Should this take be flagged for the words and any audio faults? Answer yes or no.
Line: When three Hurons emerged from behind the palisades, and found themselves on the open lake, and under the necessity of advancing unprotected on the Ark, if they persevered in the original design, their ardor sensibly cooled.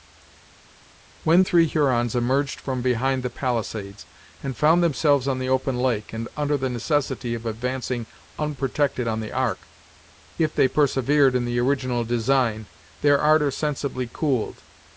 no